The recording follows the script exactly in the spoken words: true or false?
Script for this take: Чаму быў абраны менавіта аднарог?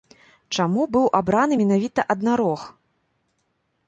true